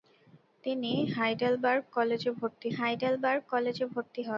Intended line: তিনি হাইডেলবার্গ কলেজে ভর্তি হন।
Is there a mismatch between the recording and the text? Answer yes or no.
yes